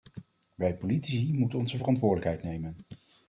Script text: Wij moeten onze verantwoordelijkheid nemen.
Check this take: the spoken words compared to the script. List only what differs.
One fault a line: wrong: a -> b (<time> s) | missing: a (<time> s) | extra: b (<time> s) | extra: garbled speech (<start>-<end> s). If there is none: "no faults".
extra: politici (0.8 s)